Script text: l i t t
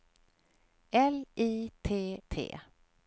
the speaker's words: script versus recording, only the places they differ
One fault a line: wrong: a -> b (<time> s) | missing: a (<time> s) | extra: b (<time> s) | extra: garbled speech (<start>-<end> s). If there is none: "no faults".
no faults